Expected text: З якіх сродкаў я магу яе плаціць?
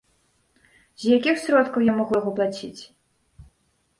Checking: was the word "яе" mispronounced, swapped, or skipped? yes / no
yes